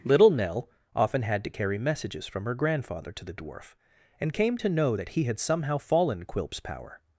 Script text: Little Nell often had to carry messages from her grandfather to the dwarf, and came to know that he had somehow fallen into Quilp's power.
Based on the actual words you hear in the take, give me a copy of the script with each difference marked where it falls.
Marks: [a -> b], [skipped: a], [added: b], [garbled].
Little Nell often had to carry messages from her grandfather to the dwarf, and came to know that he had somehow fallen [skipped: into] Quilp's power.